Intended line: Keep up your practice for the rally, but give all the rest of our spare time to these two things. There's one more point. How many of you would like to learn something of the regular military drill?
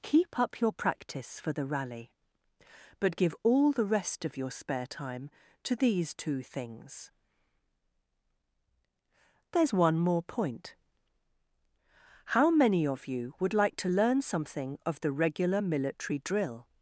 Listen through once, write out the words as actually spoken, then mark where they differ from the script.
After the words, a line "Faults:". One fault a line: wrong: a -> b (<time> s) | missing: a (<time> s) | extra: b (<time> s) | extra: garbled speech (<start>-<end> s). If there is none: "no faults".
Keep up your practice for the rally, but give all the rest of your spare time to these two things. There's one more point. How many of you would like to learn something of the regular military drill?
Faults:
wrong: our -> your (4.3 s)